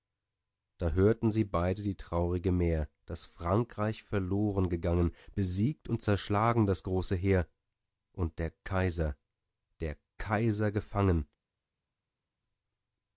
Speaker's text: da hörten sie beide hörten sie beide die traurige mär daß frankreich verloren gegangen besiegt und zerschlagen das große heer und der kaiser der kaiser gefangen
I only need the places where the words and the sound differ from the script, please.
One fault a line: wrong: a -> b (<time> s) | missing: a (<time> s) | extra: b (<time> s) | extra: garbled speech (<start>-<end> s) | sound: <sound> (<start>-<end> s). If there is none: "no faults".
missing: hörten sie beide (1.8 s)